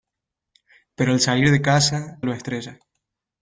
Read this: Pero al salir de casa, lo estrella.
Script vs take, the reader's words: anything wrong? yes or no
no